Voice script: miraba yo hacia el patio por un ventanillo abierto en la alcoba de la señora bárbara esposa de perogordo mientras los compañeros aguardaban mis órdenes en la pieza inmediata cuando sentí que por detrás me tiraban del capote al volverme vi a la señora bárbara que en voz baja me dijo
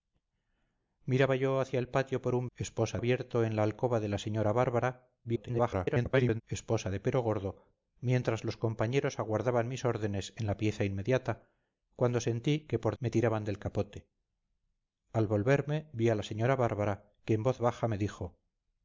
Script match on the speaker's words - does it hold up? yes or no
no